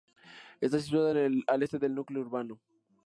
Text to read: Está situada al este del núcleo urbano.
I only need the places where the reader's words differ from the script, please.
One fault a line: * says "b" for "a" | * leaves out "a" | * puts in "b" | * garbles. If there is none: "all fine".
all fine